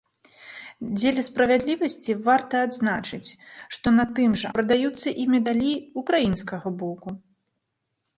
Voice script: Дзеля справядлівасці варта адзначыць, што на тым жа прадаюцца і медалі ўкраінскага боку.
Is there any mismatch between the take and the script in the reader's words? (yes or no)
no